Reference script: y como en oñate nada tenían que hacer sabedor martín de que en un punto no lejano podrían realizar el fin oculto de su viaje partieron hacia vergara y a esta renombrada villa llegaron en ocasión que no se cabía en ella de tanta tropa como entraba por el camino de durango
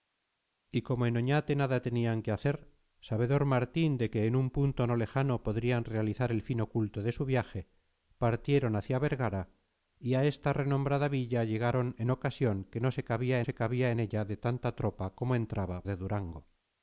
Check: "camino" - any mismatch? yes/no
yes